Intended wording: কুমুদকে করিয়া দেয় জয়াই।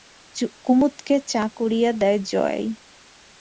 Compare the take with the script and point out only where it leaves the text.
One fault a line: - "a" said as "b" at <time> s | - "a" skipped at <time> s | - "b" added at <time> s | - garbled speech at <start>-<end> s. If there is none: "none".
- "চা" added at 1.3 s